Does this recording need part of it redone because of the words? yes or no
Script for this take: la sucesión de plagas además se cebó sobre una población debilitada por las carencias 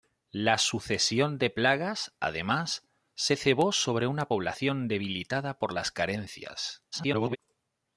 yes